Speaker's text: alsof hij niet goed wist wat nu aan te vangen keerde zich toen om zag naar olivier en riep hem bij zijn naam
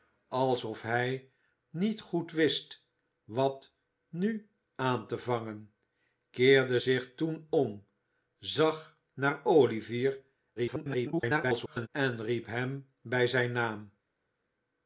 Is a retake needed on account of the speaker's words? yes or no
yes